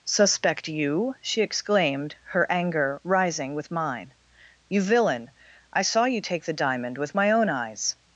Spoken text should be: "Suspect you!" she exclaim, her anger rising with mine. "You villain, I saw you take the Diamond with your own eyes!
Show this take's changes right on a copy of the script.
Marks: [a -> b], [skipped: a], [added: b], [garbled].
"Suspect you!" she [exclaim, -> exclaimed] her anger rising with mine. "You villain, I saw you take the Diamond with [your -> my] own eyes!